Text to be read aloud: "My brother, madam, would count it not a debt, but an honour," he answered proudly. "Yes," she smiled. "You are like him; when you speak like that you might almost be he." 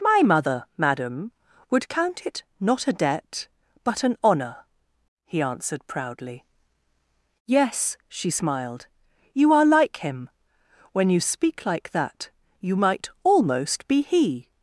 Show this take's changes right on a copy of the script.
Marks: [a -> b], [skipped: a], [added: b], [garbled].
"My [brother, -> mother] madam, would count it not a debt, but an honour," he answered proudly. "Yes," she smiled. "You are like him; when you speak like that you might almost be he."